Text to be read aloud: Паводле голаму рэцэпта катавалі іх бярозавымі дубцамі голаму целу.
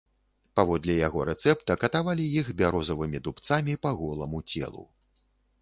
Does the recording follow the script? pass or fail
fail